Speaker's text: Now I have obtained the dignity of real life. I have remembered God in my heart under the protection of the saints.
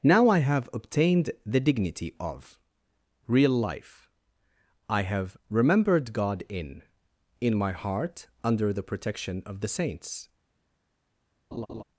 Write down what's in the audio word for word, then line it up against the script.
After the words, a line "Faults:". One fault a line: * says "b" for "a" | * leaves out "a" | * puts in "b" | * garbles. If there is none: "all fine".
Now I have obtained the dignity of real life. I have remembered God in in my heart under the protection of the saints.
Faults:
* puts in "in"